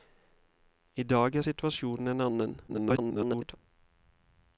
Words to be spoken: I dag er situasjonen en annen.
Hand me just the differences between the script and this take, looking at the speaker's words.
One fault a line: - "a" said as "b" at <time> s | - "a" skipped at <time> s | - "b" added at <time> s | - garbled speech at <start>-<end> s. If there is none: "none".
- garbled speech at 2.7-3.6 s